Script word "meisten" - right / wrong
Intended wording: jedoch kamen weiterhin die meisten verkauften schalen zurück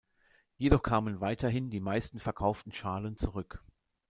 right